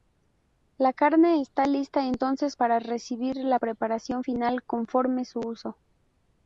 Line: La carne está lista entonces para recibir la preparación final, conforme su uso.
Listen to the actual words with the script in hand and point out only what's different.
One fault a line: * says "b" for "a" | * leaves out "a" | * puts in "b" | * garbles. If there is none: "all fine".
all fine